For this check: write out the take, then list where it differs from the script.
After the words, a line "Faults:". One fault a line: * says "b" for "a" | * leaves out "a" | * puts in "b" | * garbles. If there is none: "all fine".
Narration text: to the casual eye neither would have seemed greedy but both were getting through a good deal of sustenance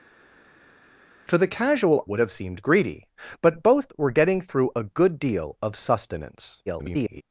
to the casual would have seemed greedy but both were getting through a good deal of sustenance [garbled]
Faults:
* leaves out "eye neither"
* garbles